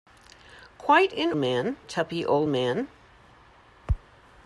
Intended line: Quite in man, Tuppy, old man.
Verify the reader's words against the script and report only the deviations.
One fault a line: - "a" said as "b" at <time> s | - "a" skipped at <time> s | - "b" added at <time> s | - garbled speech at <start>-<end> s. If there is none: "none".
none